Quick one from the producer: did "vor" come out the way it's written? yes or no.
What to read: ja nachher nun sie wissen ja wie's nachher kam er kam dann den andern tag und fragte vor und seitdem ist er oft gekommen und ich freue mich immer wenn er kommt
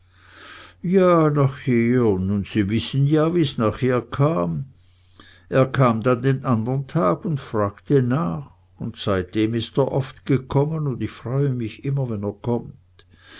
no